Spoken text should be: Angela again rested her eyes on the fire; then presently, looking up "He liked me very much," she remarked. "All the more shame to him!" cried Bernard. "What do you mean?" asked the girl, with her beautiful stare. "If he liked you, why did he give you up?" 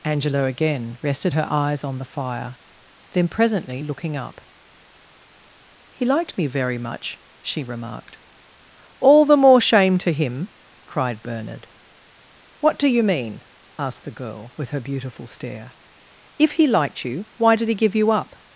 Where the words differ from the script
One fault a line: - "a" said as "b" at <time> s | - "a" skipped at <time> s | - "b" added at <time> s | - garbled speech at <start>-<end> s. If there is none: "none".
none